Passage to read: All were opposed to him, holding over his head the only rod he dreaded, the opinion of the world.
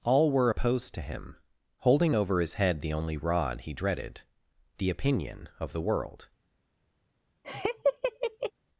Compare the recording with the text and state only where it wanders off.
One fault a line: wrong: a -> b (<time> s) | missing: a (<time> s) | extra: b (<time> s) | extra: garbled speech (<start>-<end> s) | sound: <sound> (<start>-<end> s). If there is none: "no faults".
sound: laugh (7.4-8.5 s)